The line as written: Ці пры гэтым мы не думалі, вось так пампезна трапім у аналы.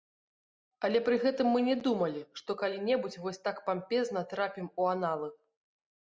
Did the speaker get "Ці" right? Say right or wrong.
wrong